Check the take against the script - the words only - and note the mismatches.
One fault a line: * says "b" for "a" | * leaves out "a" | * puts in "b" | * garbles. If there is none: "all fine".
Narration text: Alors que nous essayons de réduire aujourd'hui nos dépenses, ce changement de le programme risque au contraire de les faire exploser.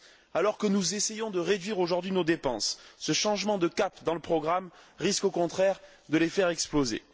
* puts in "cap dans"